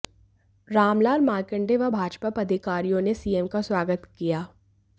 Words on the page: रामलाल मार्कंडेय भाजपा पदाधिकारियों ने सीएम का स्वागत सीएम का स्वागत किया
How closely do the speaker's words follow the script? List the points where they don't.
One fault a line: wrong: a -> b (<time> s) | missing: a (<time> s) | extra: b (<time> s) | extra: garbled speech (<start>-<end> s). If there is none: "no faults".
extra: व (1.8 s)
missing: सीएम का स्वागत (4.1 s)